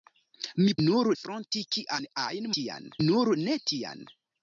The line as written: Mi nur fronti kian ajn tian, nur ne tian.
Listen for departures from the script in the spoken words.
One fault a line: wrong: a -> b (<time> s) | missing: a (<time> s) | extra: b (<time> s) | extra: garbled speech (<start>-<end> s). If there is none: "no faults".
no faults